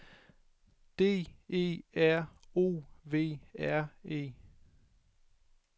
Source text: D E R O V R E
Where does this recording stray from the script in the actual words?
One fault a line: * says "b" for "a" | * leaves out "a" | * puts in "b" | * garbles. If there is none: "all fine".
all fine